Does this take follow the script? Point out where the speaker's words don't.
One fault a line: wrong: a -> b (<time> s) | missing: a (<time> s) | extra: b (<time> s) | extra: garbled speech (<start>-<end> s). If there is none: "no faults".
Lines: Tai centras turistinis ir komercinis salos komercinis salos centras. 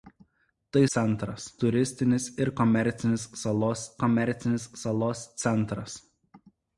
no faults